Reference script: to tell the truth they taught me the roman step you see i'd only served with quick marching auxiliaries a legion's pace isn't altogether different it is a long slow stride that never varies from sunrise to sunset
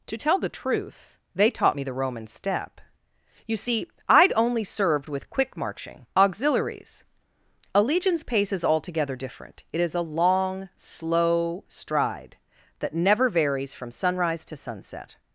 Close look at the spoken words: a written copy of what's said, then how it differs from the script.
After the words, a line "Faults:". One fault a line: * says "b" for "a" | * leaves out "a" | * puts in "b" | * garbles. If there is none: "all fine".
to tell the truth they taught me the roman step you see i'd only served with quick marching auxiliaries a legion's pace is altogether different it is a long slow stride that never varies from sunrise to sunset
Faults:
* says "is" for "isn't"